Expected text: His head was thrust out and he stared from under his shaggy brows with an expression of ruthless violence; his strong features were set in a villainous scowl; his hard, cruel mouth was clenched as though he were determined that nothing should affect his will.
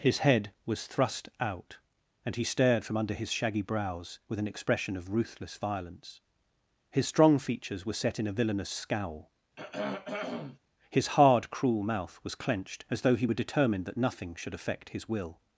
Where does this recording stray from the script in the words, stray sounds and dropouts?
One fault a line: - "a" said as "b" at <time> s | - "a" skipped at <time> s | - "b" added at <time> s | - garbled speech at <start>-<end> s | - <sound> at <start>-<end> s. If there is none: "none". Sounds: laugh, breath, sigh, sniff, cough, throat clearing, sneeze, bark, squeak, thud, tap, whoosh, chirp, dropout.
- throat clearing at 9.6-10.6 s